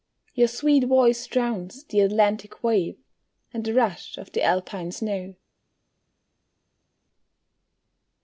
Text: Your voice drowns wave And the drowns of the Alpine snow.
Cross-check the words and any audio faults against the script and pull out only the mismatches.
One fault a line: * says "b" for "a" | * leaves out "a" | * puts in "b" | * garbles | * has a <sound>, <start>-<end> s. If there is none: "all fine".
* puts in "sweet"
* puts in "the Atlantic"
* says "rush" for "drowns"